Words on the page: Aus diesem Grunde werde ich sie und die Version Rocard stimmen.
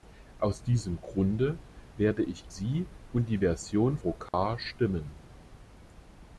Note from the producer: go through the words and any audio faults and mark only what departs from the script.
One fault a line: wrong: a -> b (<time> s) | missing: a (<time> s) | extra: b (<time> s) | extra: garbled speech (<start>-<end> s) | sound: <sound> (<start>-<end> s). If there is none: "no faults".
sound: dropout (4.3-4.3 s)